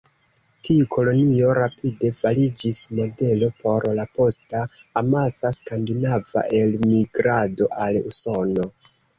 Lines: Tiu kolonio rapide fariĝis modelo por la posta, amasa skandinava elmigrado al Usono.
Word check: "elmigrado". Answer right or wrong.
right